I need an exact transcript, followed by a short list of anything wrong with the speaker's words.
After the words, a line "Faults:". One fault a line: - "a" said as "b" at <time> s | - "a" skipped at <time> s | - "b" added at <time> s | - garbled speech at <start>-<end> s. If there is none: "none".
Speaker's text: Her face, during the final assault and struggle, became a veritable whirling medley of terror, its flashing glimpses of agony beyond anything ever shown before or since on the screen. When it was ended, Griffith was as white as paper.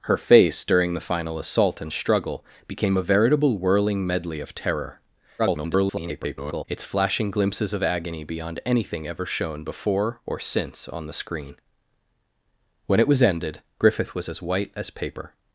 Her face, during the final assault and struggle, became a veritable whirling medley of terror, [garbled] its flashing glimpses of agony beyond anything ever shown before or since on the screen. When it was ended, Griffith was as white as paper.
Faults:
- garbled speech at 5.4-6.7 s